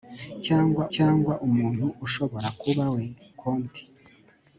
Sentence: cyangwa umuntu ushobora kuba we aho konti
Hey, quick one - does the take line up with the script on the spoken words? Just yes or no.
no